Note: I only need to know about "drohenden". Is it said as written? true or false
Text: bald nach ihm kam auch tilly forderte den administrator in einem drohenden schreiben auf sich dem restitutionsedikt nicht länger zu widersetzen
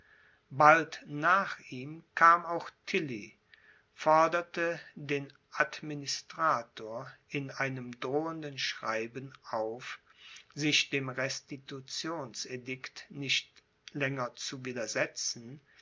true